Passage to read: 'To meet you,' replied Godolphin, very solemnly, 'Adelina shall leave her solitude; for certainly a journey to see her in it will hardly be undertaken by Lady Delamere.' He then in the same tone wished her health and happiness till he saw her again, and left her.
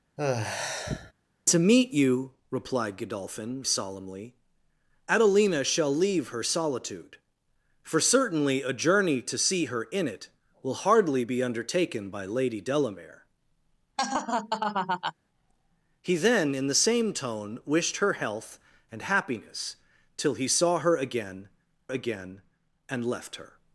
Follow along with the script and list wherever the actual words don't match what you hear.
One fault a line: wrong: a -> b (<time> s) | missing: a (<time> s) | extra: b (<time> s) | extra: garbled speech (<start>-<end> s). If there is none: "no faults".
missing: very (3.6 s)
extra: again (21.9 s)